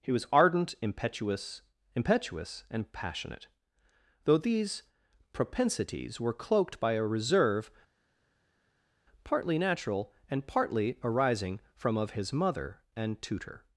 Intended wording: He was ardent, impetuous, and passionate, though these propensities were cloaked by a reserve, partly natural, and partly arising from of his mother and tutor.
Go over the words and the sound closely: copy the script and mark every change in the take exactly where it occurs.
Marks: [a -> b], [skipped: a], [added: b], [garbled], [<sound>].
He was ardent, impetuous, [added: impetuous] and passionate, though these propensities were cloaked by a reserve, partly natural, and partly arising from of his mother and tutor.